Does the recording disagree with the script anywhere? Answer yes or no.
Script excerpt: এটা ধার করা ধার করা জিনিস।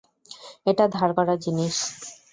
yes